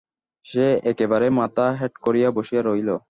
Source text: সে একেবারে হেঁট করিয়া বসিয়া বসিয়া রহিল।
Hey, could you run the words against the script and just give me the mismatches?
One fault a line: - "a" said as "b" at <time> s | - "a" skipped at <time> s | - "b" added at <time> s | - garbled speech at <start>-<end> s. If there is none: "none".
- "মাথা" added at 1.4 s
- "বসিয়া" skipped at 2.6 s